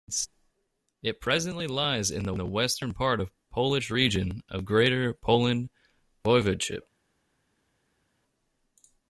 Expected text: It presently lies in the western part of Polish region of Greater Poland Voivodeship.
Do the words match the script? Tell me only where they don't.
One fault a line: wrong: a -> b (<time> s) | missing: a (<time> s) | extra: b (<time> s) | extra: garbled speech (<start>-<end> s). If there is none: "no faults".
extra: the (2.3 s)